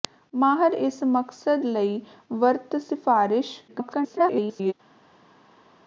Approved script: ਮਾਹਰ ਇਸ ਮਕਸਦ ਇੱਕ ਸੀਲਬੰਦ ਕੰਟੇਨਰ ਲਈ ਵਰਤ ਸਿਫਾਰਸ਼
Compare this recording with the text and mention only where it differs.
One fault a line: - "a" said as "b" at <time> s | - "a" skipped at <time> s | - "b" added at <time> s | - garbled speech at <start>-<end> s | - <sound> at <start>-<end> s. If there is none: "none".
- "ਇੱਕ ਸੀਲਬੰਦ ਕੰਟੇਨਰ" skipped at 1.6 s
- garbled speech at 3.7-4.7 s